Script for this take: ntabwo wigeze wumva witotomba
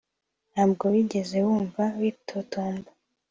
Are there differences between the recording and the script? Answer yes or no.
no